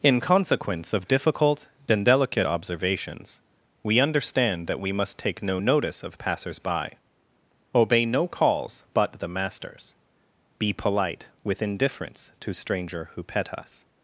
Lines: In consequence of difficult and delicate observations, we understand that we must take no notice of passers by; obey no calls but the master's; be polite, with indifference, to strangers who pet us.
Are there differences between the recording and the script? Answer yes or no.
yes